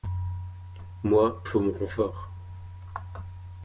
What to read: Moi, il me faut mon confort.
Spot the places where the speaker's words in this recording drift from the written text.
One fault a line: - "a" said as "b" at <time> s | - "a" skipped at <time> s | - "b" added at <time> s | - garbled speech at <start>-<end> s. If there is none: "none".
- "il me" skipped at 1.4 s